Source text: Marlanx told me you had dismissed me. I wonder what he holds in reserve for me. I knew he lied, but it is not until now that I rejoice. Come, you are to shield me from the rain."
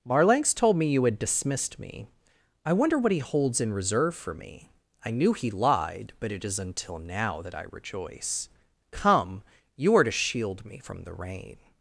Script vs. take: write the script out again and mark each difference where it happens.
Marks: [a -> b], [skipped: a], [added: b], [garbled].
Marlanx told me you had dismissed me. I wonder what he holds in reserve for me. I knew he lied, but it is [skipped: not] until now that I rejoice. Come, you are to shield me from the rain."